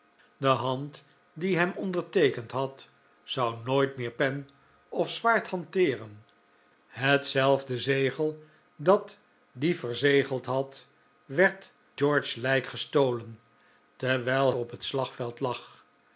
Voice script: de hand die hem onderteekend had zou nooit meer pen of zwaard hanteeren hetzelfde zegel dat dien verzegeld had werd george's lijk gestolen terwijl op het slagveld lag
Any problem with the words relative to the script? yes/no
no